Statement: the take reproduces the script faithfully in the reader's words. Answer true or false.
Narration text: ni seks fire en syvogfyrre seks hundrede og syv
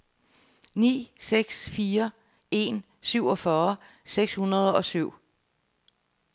true